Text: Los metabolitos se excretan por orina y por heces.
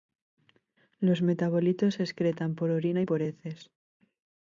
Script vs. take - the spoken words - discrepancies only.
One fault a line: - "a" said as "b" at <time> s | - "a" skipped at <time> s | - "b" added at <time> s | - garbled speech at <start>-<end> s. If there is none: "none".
none